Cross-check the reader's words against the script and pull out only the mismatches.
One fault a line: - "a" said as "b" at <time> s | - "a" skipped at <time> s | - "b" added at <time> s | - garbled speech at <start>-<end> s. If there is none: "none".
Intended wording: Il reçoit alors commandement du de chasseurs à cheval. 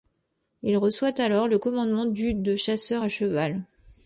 - "le" added at 1.5 s